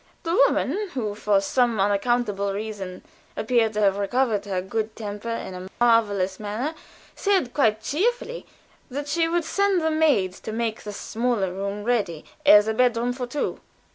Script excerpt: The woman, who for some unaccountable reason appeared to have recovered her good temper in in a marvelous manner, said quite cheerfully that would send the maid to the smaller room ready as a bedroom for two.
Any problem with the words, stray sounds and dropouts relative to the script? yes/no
yes